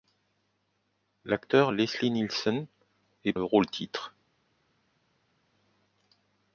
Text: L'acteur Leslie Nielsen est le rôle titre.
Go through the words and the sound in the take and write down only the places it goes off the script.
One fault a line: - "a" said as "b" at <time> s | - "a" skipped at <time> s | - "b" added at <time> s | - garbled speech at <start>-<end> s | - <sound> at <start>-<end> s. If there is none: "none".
none